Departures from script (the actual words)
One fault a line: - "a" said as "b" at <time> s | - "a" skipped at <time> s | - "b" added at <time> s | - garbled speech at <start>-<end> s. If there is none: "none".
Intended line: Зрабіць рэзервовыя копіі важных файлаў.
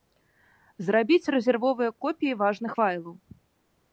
none